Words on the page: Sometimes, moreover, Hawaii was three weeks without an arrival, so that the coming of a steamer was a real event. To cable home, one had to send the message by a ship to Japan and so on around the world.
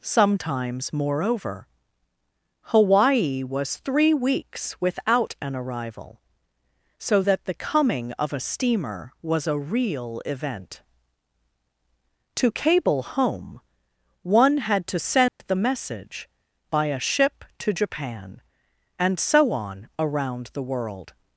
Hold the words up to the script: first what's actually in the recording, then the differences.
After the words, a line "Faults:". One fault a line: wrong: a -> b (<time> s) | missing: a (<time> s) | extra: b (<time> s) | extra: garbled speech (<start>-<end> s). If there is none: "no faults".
Sometimes, moreover, Hawaii was three weeks without an arrival, so that the coming of a steamer was a real event. To cable home, one had to send the message by a ship to Japan and so on around the world.
Faults:
no faults